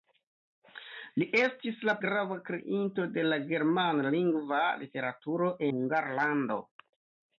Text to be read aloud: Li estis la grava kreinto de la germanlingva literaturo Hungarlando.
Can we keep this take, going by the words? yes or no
yes